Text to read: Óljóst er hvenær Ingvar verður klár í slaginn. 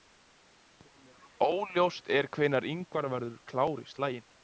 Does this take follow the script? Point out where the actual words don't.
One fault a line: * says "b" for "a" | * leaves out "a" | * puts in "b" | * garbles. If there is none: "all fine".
all fine